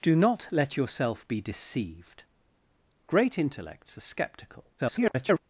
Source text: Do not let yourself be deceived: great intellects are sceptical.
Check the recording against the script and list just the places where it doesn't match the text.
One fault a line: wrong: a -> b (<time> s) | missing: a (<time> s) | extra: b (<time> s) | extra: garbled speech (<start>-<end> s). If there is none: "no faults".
extra: garbled speech (4.8-5.4 s)